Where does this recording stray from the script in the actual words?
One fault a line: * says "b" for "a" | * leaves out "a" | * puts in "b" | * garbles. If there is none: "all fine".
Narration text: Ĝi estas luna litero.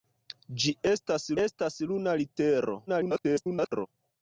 * puts in "estas"
* garbles